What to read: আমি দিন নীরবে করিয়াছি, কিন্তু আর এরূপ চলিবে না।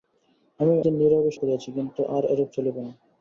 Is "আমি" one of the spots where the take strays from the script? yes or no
no